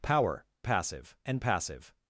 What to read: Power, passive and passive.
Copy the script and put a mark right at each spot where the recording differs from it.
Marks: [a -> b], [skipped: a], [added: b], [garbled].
Power, passive and passive.